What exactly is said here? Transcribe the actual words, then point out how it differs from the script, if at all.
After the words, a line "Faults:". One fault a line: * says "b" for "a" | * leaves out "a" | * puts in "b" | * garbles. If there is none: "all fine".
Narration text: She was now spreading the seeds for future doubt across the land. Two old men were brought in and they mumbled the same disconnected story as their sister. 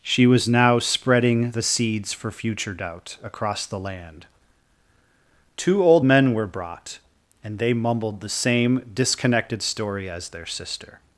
She was now spreading the seeds for future doubt across the land. Two old men were brought and they mumbled the same disconnected story as their sister.
Faults:
* leaves out "in"